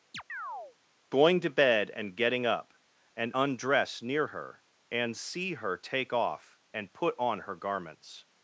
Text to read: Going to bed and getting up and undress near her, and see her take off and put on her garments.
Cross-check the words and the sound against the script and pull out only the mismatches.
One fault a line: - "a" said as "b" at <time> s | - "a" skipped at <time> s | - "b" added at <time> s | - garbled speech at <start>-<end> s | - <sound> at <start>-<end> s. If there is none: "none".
- chirp at 0.1-0.8 s